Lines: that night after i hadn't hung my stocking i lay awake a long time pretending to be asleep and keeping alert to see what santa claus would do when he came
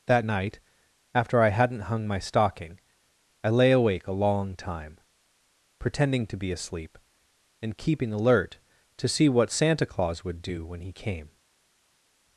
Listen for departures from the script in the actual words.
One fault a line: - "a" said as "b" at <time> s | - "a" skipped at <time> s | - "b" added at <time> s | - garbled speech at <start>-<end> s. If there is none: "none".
none